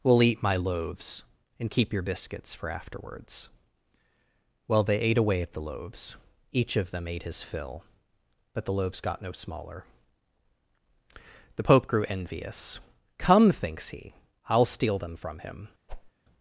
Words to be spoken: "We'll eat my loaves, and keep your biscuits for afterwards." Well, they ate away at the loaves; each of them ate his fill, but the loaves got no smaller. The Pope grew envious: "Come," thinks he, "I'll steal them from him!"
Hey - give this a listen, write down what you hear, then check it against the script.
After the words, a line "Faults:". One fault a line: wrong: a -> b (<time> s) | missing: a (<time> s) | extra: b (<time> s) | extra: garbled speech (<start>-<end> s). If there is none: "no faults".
"We'll eat my loaves, and keep your biscuits for afterwards." Well, they ate away at the loaves; each of them ate his fill, but the loaves got no smaller. The Pope grew envious: "Come," thinks he, "I'll steal them from him!"
Faults:
no faults